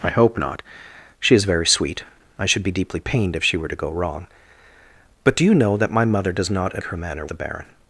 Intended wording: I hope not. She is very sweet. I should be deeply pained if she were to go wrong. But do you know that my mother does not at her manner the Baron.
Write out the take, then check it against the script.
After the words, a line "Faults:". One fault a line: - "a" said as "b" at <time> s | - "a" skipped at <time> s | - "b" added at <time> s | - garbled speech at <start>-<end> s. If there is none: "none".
I hope not. She is very sweet. I should be deeply pained if she were to go wrong. But do you know that my mother does not at her manner the Baron.
Faults:
none